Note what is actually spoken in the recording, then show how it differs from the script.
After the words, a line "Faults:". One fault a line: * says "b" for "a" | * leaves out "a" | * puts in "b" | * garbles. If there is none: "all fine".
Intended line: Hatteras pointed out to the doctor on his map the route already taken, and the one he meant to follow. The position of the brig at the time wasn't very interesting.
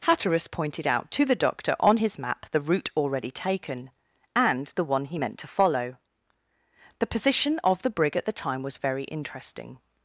Hatteras pointed out to the doctor on his map the route already taken, and the one he meant to follow. The position of the brig at the time was very interesting.
Faults:
* says "was" for "wasn't"